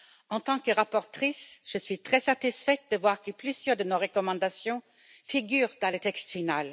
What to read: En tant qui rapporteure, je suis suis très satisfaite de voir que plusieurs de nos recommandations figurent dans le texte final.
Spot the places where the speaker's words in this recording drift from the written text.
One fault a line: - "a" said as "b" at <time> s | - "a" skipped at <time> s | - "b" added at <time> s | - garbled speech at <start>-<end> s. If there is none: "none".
- "qui" said as "que" at 0.6 s
- "suis" skipped at 2.0 s